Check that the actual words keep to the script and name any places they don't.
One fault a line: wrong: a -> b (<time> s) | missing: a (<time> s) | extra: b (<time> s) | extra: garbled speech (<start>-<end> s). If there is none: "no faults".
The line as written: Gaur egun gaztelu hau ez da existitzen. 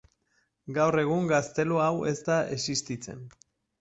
no faults